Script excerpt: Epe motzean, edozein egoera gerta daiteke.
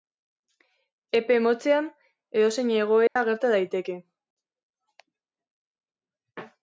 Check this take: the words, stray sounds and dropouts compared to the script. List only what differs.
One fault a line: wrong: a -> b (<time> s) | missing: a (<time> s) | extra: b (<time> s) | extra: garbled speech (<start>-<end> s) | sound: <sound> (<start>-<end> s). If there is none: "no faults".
sound: dropout (3.1-3.2 s)